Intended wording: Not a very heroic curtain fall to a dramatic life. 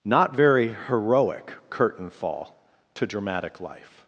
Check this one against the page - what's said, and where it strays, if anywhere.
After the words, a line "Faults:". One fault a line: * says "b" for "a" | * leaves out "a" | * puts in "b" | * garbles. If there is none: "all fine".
Not very heroic curtain fall to dramatic life.
Faults:
* leaves out "a"
* leaves out "a"